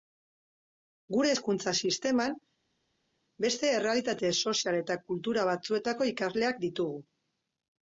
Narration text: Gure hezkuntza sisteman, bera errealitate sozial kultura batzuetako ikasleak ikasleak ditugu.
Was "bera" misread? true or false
true